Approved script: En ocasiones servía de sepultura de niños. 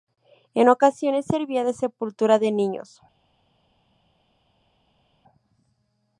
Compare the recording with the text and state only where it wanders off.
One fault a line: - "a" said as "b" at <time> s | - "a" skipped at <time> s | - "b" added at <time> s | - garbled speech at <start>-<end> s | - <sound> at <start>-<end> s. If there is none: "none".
none